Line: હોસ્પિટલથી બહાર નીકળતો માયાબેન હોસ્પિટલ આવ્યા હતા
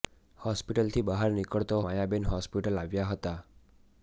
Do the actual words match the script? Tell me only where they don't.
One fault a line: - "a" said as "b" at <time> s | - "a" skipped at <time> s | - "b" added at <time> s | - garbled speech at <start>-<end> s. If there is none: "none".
none